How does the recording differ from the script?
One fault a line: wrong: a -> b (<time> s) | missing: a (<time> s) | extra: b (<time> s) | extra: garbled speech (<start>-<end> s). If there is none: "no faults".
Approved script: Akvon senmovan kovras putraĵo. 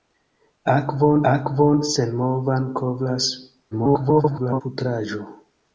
extra: akvon (1.3 s)
extra: garbled speech (3.7-4.6 s)